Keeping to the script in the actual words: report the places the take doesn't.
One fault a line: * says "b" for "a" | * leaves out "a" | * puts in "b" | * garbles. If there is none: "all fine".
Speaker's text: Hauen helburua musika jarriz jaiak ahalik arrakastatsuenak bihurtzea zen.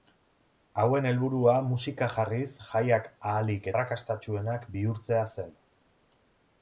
all fine